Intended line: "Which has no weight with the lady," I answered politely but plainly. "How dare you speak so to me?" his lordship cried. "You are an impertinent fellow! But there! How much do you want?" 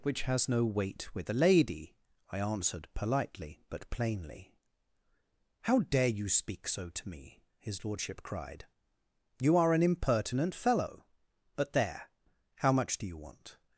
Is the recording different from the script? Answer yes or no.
no